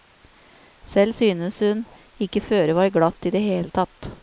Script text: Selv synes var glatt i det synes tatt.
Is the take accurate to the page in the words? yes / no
no